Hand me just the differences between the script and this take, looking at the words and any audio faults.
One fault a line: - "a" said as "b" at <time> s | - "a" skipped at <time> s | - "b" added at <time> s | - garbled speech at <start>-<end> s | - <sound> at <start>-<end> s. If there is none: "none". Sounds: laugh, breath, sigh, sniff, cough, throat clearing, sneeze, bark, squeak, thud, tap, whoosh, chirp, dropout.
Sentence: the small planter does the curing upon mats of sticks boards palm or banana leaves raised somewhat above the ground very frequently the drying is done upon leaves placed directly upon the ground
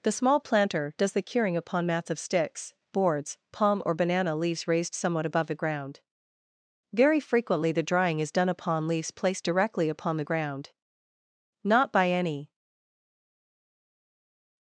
- "not by any" added at 11.6 s